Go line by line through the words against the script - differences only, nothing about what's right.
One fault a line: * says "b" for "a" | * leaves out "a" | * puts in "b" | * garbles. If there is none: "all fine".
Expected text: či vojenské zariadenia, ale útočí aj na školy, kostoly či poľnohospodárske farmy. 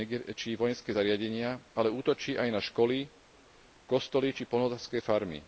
all fine